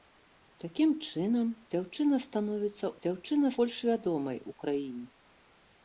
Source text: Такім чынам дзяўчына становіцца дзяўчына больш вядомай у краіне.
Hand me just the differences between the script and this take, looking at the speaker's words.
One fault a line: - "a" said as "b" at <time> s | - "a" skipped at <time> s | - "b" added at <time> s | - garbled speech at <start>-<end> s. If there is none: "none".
none